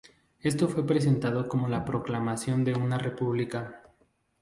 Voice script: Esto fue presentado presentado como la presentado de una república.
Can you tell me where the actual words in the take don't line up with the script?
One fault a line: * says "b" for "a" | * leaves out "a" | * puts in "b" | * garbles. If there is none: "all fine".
* leaves out "presentado"
* says "proclamación" for "presentado"